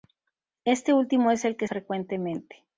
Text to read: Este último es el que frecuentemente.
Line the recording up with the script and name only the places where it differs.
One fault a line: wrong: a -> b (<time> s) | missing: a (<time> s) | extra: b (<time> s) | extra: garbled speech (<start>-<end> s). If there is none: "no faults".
no faults